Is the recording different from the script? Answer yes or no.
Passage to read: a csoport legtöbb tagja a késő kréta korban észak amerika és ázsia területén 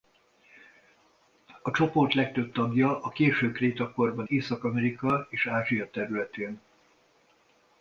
no